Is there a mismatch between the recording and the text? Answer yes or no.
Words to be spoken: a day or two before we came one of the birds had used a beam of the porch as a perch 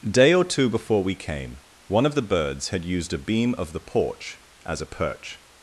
no